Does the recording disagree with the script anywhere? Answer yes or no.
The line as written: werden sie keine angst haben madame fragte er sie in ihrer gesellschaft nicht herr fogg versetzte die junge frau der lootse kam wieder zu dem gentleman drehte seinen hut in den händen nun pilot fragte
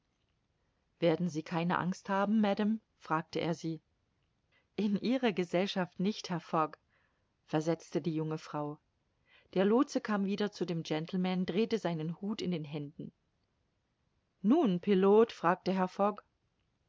no